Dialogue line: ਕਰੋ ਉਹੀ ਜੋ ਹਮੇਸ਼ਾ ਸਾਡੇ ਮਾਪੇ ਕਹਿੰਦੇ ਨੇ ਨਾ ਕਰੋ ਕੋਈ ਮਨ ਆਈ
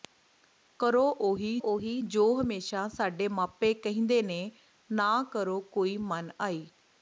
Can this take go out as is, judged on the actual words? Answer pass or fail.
fail